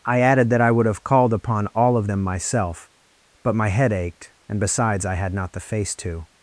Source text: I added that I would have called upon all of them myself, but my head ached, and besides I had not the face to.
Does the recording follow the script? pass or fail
pass